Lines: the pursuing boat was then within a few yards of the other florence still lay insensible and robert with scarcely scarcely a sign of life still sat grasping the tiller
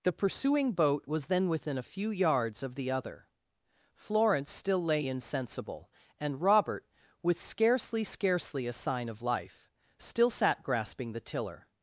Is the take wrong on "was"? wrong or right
right